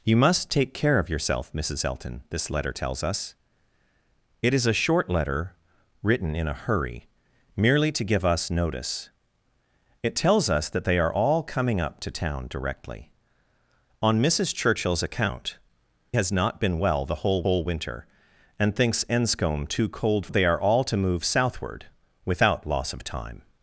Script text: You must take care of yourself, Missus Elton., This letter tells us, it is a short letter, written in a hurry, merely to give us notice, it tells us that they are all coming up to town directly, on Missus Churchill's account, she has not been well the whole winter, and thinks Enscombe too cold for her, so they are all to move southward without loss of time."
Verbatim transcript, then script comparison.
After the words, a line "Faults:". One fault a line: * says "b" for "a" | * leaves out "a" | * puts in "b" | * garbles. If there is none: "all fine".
You must take care of yourself, Missus Elton., This letter tells us, it is a short letter, written in a hurry, merely to give us notice, it tells us that they are all coming up to town directly, on Missus Churchill's account, has not been well the whole whole winter, and thinks Enscombe too cold they are all to move southward without loss of time."
Faults:
* leaves out "she"
* puts in "whole"
* leaves out "for her so"